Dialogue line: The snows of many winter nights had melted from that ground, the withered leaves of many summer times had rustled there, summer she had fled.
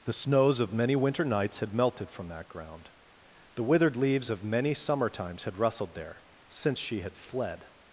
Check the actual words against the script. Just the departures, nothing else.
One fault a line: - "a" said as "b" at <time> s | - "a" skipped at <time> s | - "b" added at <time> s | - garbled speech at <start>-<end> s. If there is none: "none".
- "summer" said as "since" at 6.5 s